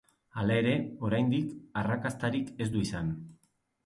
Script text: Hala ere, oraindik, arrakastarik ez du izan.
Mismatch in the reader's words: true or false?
false